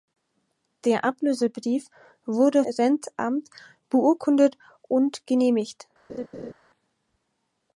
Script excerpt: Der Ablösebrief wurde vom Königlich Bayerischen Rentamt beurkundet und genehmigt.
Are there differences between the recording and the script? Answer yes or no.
yes